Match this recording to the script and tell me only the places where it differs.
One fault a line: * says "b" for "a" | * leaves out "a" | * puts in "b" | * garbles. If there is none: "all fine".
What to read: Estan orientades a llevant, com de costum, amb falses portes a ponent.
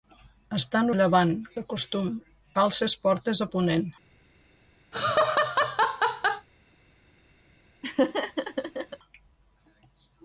* leaves out "orientades"
* leaves out "com"
* leaves out "amb"